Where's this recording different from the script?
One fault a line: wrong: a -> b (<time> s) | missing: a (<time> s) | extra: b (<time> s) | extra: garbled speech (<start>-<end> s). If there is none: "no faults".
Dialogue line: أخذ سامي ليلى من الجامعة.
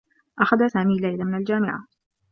no faults